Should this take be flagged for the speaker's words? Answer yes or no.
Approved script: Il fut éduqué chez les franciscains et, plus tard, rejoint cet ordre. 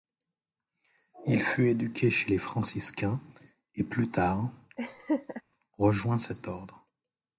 no